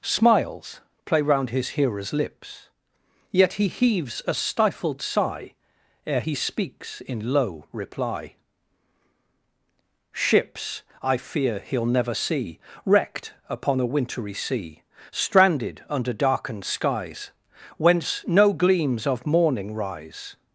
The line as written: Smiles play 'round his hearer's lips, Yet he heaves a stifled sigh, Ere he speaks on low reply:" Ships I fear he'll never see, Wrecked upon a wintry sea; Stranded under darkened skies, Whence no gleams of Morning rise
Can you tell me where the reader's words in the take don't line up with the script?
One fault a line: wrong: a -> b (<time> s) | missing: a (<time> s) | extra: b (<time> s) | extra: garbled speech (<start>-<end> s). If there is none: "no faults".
wrong: on -> in (7.0 s)